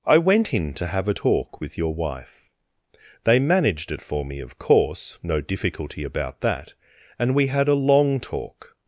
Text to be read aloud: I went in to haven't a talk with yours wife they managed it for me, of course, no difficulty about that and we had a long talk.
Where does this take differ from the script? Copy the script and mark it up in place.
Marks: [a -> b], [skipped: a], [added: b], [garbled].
I went in to [haven't -> have] a talk with [yours -> your] wife they managed it for me, of course, no difficulty about that and we had a long talk.